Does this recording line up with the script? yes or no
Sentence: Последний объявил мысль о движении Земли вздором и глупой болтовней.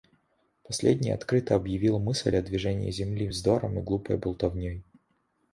no